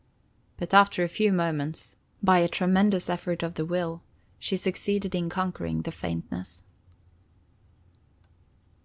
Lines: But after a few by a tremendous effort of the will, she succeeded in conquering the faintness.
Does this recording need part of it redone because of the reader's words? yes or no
yes